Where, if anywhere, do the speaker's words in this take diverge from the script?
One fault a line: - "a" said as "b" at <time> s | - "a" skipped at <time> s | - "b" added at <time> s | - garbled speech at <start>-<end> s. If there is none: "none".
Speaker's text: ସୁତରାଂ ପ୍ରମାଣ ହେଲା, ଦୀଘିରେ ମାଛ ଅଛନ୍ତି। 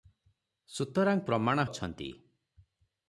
- "ହେଲା ଦୀଘିରେ ମାଛ" skipped at 1.7 s